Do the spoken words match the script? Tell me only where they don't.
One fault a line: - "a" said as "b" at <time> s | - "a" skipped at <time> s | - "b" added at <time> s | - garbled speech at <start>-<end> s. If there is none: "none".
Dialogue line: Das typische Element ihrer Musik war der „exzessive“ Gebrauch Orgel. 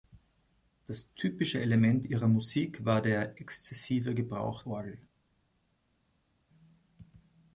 none